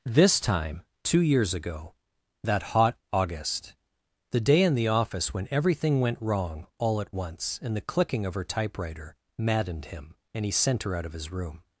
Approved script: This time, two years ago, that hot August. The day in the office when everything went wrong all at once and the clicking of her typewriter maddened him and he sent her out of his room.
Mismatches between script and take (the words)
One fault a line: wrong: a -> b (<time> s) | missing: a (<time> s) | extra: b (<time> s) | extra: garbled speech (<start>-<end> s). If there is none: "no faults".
no faults